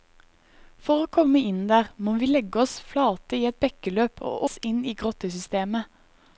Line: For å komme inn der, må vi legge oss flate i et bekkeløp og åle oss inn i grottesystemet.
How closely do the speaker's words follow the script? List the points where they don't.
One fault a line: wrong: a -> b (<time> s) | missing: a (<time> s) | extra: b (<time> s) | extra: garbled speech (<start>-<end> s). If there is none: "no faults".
missing: åle (4.5 s)